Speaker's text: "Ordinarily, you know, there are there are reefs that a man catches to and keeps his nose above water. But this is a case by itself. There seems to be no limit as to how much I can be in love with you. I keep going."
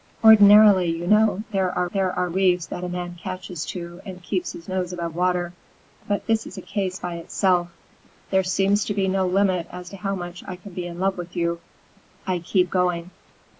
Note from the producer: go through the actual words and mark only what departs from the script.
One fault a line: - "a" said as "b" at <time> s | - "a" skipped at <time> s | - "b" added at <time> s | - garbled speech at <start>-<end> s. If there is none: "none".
none